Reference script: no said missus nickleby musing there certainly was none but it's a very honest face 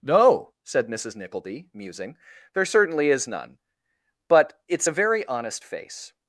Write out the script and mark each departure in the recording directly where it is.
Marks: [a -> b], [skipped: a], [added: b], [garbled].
no said missus nickleby musing there certainly [was -> is] none but it's a very honest face